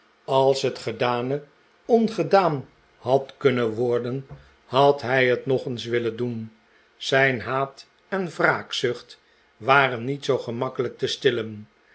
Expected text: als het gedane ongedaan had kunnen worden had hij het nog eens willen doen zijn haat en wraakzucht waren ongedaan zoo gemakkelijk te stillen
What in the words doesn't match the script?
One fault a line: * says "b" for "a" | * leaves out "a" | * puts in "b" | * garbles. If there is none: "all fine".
* says "niet" for "ongedaan"